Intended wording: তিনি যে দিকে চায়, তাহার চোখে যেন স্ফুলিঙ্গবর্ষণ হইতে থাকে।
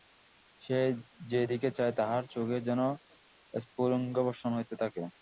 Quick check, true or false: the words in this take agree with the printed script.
false